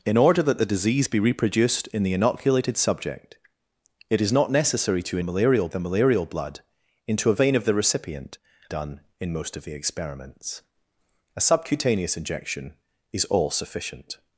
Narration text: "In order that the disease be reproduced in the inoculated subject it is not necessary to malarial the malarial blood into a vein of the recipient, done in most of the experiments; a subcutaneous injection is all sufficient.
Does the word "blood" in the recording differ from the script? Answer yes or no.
no